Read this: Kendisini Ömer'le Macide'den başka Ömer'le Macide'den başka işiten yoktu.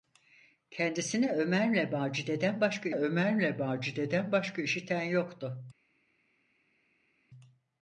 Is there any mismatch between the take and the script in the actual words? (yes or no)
no